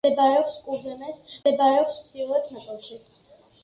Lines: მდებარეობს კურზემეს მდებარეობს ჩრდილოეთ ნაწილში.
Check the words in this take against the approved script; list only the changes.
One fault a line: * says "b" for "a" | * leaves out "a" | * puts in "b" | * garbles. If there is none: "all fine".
all fine